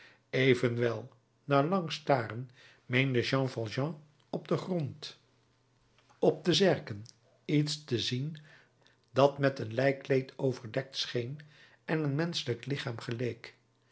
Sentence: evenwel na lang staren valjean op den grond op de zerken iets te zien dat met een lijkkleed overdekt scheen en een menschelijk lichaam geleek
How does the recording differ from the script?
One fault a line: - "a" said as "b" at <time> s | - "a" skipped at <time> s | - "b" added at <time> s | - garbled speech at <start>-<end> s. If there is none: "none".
- "meende jean" added at 2.9 s